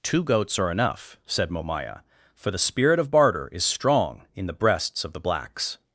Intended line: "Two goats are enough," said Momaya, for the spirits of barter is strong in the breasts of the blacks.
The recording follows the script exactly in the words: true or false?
false